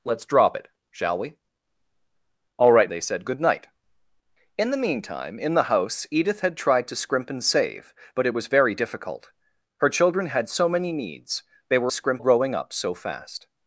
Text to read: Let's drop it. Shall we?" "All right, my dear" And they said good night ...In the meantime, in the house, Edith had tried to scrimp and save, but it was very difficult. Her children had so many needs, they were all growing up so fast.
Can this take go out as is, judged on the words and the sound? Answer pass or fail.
fail